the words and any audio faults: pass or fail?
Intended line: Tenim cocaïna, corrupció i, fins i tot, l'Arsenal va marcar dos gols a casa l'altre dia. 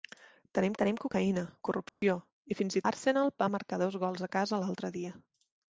fail